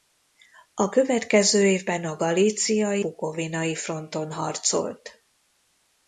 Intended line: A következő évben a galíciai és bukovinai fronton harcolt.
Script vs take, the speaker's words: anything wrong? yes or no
yes